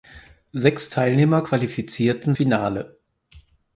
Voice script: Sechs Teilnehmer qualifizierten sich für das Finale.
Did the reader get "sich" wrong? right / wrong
wrong